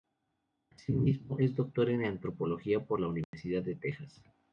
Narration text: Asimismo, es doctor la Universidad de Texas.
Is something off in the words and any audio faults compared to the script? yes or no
yes